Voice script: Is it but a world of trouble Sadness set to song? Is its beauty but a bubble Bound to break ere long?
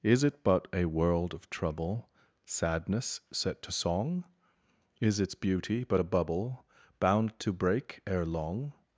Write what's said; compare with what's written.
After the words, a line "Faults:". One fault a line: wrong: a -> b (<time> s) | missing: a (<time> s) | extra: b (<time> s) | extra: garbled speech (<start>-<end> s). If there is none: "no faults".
Is it but a world of trouble Sadness set to song? Is its beauty but a bubble Bound to break ere long?
Faults:
no faults